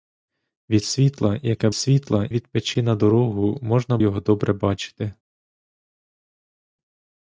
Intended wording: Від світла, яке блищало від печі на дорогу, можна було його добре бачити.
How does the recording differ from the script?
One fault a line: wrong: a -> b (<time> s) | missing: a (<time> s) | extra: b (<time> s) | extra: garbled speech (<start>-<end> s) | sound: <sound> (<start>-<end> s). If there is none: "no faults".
wrong: блищало -> світла (1.7 s)
missing: було (4.0 s)